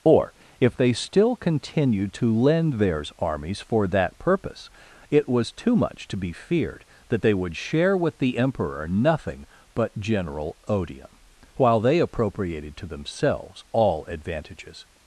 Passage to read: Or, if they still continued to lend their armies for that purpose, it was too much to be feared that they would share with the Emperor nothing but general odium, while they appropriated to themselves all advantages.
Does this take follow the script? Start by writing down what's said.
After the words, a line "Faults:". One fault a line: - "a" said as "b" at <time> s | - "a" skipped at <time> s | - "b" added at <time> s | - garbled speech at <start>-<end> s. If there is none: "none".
Or, if they still continued to lend theirs armies for that purpose, it was too much to be feared that they would share with the Emperor nothing but general odium, while they appropriated to themselves all advantages.
Faults:
- "their" said as "theirs" at 2.7 s